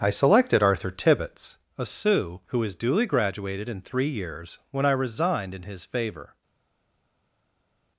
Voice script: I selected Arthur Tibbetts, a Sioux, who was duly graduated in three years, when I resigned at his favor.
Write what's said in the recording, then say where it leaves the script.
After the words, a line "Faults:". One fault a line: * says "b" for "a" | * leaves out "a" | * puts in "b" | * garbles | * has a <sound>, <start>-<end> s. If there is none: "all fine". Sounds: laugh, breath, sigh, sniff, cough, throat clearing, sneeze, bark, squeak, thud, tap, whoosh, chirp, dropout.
I selected Arthur Tibbetts, a Sioux, who was duly graduated in three years, when I resigned in his favor.
Faults:
* says "in" for "at"